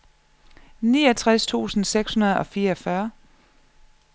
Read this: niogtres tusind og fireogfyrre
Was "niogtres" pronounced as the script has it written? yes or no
yes